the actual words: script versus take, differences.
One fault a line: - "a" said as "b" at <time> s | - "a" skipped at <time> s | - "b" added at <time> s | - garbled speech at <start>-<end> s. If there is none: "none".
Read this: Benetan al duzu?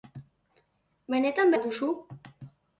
none